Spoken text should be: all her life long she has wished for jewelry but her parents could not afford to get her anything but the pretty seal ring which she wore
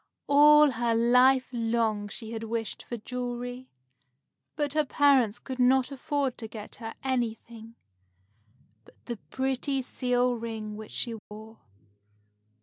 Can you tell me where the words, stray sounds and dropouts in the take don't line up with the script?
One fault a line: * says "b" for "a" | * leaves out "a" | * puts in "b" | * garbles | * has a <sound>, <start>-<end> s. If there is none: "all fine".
* says "had" for "has"
* has a dropout, 11.2-11.3 s